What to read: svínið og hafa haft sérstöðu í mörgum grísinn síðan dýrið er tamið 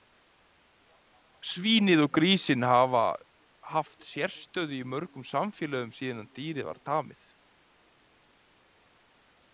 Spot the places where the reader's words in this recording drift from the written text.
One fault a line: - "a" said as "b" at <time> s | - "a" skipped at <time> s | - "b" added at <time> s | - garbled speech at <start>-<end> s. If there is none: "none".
- "grísinn" added at 2.2 s
- "grísinn" said as "samfélögum" at 5.3 s
- "er" said as "var" at 6.7 s